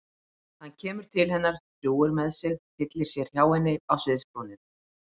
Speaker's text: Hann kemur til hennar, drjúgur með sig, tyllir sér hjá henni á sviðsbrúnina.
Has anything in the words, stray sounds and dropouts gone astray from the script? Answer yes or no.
no